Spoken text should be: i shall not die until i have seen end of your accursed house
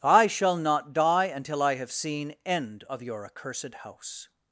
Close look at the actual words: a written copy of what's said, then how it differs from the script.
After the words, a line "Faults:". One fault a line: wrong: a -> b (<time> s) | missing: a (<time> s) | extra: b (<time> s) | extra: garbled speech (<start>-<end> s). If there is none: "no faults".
i shall not die until i have seen end of your accursed house
Faults:
no faults